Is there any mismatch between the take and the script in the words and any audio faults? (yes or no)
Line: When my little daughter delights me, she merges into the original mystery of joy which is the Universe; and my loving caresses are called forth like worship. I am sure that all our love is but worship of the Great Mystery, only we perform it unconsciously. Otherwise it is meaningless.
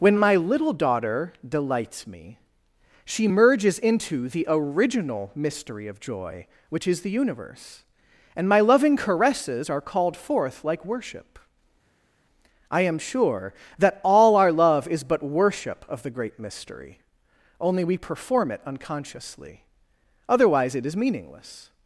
no